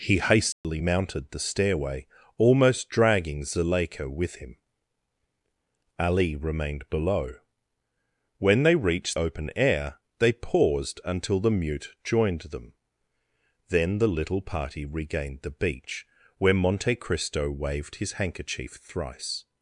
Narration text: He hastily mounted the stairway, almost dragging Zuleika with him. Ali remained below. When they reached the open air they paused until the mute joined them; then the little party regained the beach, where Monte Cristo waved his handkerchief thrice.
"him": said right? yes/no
yes